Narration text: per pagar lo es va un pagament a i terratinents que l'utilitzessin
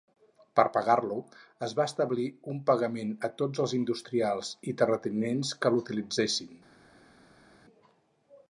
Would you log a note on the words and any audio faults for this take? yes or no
yes